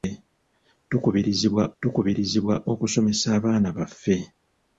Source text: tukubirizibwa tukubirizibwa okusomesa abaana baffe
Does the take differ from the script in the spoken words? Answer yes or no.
no